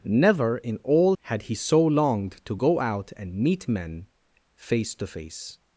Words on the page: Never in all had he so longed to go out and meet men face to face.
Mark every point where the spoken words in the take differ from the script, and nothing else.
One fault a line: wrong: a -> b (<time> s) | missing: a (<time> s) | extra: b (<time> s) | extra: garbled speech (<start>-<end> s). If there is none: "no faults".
no faults